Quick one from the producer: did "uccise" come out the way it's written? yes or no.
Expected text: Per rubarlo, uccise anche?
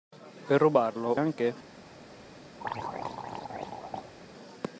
no